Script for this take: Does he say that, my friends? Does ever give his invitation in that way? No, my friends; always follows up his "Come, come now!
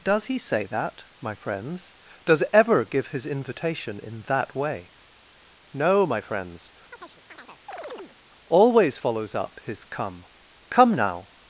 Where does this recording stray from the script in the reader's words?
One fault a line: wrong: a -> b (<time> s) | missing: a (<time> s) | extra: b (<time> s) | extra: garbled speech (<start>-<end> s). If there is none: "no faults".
no faults